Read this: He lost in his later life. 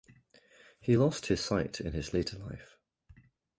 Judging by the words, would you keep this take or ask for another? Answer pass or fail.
fail